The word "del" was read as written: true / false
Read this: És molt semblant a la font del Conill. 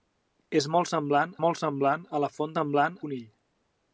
false